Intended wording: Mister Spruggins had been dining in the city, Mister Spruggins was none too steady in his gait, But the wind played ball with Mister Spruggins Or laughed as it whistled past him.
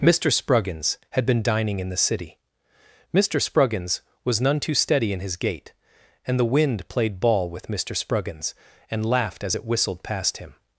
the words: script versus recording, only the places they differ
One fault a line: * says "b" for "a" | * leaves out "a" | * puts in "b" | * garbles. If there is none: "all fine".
* says "And" for "But"
* says "And" for "Or"